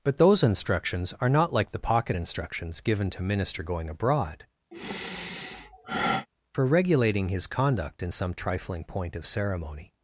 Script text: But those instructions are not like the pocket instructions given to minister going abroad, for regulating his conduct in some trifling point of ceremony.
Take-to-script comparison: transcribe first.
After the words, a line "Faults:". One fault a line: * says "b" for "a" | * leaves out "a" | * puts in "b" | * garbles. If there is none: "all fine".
But those instructions are not like the pocket instructions given to minister going abroad, for regulating his conduct in some trifling point of ceremony.
Faults:
all fine